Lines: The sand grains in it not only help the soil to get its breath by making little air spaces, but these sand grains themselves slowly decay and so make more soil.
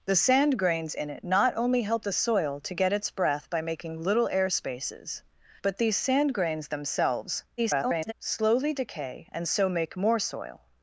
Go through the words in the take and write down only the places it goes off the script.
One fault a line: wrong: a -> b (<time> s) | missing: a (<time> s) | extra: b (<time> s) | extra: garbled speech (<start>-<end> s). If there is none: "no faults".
extra: garbled speech (7.6-8.1 s)